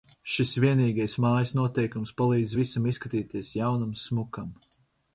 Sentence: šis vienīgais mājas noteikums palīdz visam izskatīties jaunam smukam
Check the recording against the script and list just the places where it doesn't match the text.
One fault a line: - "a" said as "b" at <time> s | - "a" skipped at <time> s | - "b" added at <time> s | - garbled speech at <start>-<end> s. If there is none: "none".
none